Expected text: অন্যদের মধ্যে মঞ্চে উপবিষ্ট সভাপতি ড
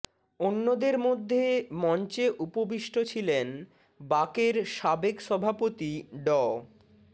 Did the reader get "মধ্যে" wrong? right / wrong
right